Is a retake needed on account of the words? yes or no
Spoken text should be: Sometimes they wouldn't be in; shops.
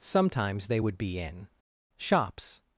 yes